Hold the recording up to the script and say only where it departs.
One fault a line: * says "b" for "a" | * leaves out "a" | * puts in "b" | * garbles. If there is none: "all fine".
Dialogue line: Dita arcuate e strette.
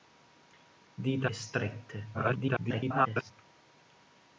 * leaves out "arcuate"
* garbles